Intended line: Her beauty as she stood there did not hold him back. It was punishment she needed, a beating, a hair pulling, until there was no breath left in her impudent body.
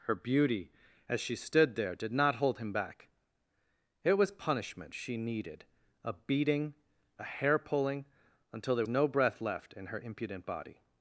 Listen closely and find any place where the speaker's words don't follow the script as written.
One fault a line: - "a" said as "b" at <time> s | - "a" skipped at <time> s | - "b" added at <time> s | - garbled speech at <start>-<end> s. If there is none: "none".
- "was" skipped at 8.8 s